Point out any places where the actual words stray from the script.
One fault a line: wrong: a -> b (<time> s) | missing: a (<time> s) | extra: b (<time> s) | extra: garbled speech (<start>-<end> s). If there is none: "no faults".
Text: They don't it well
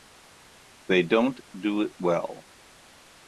extra: do (1.6 s)